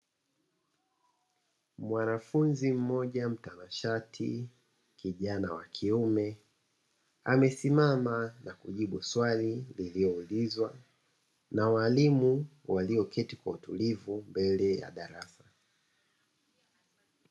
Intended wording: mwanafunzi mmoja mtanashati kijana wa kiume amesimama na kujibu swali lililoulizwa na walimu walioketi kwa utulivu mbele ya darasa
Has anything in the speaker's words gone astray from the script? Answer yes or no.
no